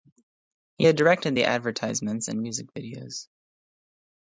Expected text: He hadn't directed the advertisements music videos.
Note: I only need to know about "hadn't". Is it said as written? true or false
false